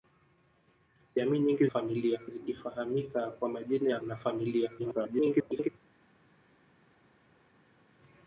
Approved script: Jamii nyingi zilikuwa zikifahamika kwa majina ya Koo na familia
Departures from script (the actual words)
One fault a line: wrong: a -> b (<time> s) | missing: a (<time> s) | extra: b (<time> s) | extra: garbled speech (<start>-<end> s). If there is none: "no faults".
wrong: zilikuwa -> familia (1.6 s)
missing: Koo (4.0 s)
extra: garbled speech (4.8-5.7 s)